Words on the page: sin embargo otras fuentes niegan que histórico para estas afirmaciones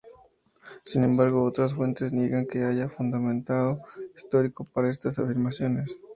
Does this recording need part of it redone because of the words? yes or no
yes